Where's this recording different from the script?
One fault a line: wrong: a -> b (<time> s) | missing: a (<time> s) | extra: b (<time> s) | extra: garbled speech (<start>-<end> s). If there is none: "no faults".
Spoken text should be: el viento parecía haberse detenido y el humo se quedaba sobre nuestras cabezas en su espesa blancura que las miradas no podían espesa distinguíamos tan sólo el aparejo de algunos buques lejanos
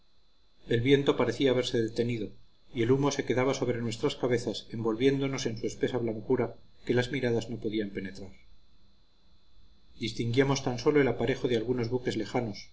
extra: envolviéndonos (4.7 s)
wrong: espesa -> penetrar (7.9 s)